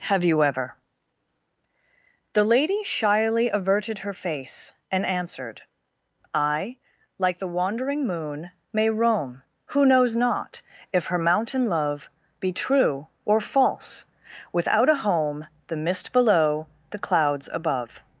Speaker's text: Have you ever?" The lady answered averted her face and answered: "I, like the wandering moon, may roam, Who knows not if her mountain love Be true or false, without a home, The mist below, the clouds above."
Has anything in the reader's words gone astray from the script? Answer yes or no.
yes